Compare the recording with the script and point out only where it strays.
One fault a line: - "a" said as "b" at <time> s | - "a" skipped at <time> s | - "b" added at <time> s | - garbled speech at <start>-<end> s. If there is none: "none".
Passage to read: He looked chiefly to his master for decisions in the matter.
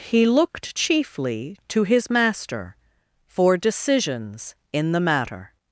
none